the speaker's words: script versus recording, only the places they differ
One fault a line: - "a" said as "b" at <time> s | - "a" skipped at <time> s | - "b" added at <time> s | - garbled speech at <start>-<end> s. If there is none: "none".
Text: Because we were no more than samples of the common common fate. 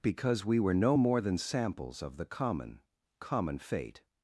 none